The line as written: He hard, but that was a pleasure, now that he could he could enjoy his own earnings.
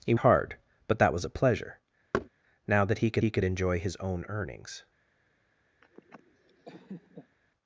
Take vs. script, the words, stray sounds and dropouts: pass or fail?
fail